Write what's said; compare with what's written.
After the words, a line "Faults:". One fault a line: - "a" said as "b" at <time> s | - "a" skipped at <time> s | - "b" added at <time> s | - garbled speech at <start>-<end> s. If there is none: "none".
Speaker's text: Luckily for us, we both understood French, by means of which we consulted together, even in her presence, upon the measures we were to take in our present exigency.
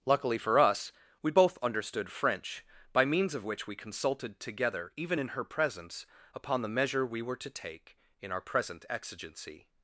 Luckily for us, we both understood French, by means of which we consulted together, even in her presence, upon the measure we were to take in our present exigency.
Faults:
- "measures" said as "measure" at 6.7 s